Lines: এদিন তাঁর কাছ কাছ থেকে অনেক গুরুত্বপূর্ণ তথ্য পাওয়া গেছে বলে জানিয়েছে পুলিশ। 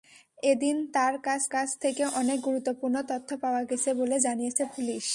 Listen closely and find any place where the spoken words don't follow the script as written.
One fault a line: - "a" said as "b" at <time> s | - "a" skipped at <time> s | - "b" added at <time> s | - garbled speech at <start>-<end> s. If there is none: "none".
none